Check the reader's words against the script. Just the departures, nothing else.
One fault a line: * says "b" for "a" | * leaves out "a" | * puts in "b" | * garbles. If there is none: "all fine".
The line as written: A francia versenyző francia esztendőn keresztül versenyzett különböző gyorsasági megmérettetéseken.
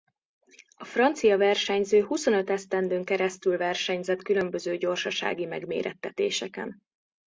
* says "huszonöt" for "francia"